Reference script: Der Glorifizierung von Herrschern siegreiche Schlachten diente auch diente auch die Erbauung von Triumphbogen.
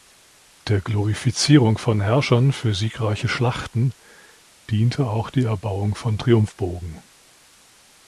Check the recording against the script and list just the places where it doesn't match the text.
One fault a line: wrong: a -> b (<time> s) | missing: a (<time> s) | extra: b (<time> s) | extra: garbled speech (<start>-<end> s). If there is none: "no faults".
extra: für (2.5 s)
missing: diente auch (5.3 s)